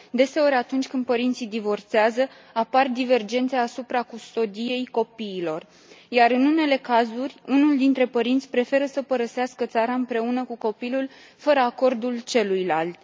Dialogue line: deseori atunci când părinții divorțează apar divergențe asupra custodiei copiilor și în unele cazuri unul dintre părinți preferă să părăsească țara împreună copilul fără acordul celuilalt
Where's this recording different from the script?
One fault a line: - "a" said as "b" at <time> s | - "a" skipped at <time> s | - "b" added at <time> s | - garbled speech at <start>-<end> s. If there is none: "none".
- "și" said as "iar" at 6.1 s
- "cu" added at 10.4 s